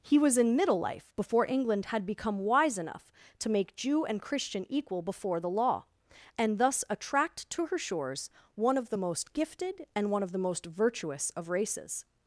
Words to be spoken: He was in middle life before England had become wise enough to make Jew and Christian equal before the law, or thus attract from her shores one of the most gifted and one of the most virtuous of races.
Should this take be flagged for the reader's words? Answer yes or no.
yes